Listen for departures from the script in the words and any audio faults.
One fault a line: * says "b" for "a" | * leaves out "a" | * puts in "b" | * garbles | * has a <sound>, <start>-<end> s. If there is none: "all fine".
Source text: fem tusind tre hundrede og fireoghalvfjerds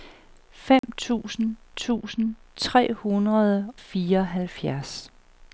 * has a dropout, 0.8-0.8 s
* puts in "tusind"
* leaves out "og"